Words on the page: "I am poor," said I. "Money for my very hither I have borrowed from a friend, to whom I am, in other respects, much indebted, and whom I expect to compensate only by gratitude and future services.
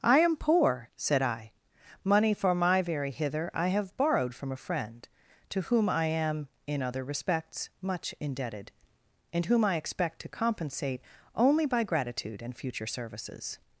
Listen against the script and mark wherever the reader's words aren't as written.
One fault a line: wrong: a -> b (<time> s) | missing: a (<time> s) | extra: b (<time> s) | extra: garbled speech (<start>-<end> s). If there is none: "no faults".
no faults